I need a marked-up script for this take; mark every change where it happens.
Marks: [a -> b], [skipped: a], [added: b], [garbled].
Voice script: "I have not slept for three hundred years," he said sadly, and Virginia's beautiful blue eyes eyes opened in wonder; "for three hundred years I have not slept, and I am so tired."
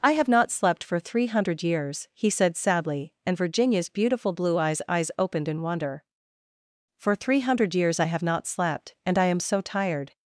"I have not slept for three hundred years," he said sadly, and Virginia's beautiful blue eyes eyes opened in wonder; "for three hundred years I have not slept, and I am so tired."